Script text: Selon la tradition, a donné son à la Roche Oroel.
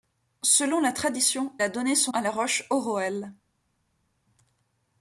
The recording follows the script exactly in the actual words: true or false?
true